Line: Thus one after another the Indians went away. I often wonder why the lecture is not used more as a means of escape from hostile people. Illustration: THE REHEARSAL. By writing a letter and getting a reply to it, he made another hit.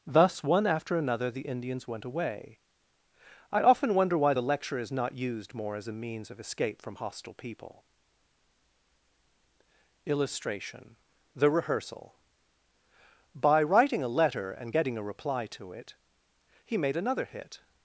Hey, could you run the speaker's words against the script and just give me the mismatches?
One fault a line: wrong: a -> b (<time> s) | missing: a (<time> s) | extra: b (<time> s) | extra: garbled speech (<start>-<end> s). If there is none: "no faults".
no faults